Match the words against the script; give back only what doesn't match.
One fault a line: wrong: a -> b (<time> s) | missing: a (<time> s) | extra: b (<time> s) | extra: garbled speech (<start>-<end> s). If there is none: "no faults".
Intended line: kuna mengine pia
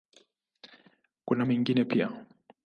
no faults